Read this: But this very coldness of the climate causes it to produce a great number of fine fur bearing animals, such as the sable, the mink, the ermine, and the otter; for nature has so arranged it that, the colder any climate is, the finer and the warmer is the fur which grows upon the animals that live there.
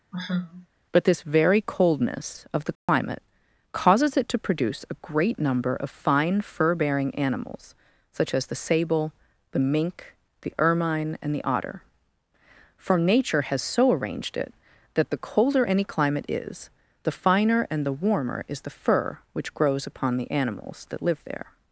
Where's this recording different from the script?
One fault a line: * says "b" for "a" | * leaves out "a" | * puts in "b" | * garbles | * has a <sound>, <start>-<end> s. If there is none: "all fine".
* has a sigh, 0.1-0.7 s
* has a dropout, 2.8-2.9 s